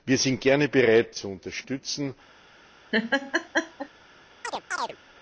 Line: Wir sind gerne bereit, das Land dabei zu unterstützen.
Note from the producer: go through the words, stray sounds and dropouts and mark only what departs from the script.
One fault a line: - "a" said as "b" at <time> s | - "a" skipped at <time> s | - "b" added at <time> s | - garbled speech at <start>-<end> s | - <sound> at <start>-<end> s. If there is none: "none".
- "das Land dabei" skipped at 1.1 s
- laugh at 2.9-3.9 s
- chirp at 4.4-5.0 s